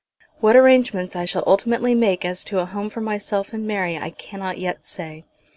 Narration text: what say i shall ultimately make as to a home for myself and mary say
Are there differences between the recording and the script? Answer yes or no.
yes